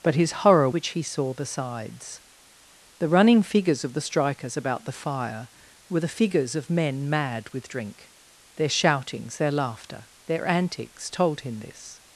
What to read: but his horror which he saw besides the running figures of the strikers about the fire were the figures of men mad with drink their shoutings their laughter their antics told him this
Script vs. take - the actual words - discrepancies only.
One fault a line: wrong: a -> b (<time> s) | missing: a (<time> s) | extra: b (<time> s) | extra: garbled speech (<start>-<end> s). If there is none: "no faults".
no faults